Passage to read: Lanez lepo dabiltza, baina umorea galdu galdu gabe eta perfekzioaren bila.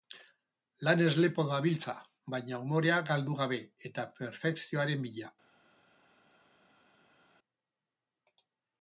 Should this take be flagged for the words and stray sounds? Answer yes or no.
yes